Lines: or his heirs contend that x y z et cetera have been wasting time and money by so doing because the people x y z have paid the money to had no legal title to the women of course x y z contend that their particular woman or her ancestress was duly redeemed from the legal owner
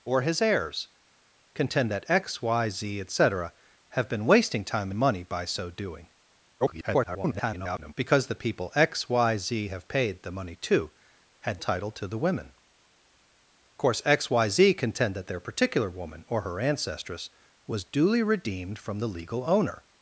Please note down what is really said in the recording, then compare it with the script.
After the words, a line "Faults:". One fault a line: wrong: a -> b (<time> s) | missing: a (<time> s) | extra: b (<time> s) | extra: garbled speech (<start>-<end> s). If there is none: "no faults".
or his heirs contend that x y z et cetera have been wasting time and money by so doing [garbled] because the people x y z have paid the money to had title to the women course x y z contend that their particular woman or her ancestress was duly redeemed from the legal owner
Faults:
extra: garbled speech (6.6-7.9 s)
missing: no legal (11.6 s)
missing: of (12.5 s)